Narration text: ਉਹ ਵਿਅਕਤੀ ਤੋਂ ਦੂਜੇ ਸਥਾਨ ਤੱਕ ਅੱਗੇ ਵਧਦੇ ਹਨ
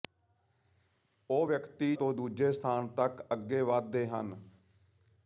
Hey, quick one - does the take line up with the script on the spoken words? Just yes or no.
yes